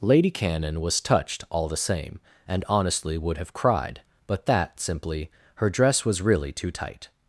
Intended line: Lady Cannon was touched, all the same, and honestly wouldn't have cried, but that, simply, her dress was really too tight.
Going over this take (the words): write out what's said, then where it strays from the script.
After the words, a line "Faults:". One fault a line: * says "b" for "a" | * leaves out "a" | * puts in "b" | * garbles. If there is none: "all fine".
Lady Cannon was touched, all the same, and honestly would have cried, but that, simply, her dress was really too tight.
Faults:
* says "would" for "wouldn't"